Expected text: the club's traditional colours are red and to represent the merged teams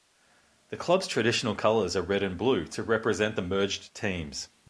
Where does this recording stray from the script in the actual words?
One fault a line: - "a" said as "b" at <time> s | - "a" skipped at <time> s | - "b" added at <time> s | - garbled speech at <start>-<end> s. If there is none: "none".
- "blue" added at 2.4 s